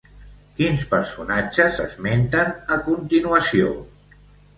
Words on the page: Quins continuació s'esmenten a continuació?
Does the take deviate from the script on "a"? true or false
false